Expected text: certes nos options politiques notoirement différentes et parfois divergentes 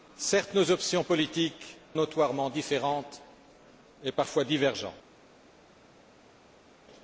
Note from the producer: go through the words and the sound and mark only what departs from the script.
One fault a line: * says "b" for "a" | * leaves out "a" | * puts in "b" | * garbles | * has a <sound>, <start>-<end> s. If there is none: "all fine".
all fine